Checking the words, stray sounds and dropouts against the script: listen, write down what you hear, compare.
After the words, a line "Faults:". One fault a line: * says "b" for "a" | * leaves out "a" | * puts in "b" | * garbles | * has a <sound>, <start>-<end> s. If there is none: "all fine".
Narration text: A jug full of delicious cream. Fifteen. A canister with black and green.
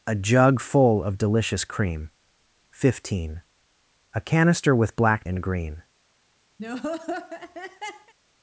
A jug full of delicious cream. Fifteen. A canister with black and green.
Faults:
* has a laugh, 6.6-8.1 s